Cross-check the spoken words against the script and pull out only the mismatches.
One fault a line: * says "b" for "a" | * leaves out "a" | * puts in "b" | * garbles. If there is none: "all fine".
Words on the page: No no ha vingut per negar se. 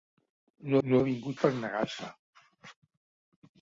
all fine